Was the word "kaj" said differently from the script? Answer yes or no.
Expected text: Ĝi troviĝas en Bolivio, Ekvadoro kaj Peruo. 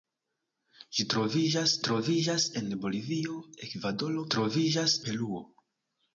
yes